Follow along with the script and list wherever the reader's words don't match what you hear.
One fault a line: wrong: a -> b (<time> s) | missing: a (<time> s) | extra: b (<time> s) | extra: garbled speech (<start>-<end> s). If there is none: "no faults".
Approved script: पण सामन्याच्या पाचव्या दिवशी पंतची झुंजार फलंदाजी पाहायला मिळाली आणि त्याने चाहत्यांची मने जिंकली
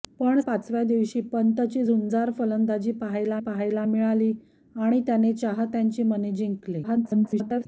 missing: सामन्याच्या (0.4 s)
extra: पाहायला (3.4 s)
extra: garbled speech (6.8-7.7 s)